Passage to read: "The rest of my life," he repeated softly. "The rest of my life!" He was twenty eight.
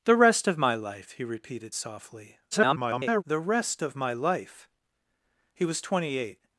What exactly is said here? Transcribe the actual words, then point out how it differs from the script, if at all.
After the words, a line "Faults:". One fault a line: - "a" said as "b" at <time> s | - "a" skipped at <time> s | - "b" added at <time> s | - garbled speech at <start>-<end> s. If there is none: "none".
"The rest of my life," he repeated softly. [garbled] "The rest of my life!" He was twenty eight.
Faults:
- garbled speech at 2.5-3.2 s